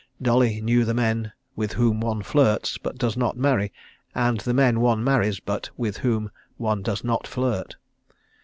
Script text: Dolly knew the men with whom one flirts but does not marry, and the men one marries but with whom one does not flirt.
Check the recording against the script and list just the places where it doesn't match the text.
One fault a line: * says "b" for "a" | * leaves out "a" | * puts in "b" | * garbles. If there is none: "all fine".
all fine